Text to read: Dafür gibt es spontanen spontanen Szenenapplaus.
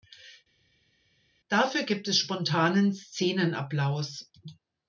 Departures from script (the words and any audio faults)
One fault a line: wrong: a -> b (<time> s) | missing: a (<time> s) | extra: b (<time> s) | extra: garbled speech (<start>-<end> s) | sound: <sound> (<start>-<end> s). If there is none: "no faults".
missing: spontanen (2.9 s)